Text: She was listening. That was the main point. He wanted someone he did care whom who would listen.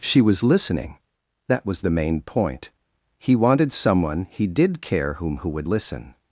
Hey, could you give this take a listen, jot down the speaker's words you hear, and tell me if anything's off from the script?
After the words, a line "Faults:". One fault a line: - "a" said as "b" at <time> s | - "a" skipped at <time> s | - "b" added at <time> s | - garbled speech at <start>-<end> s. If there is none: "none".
She was listening. That was the main point. He wanted someone he did care whom who would listen.
Faults:
none